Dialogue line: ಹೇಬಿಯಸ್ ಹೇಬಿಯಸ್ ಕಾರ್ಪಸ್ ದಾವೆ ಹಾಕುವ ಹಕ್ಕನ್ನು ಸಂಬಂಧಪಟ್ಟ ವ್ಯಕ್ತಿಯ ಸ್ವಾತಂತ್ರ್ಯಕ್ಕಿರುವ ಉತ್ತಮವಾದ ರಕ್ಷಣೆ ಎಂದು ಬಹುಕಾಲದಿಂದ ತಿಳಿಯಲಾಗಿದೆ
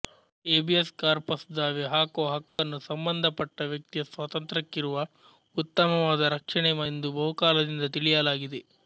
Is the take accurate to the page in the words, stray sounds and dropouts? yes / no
no